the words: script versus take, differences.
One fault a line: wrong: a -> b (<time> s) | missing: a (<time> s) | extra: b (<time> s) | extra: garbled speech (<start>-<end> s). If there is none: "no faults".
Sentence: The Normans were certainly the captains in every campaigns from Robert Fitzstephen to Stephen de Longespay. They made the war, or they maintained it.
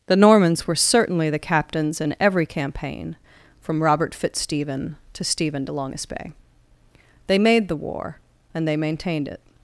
wrong: campaigns -> campaign (2.5 s)
wrong: or -> and (8.5 s)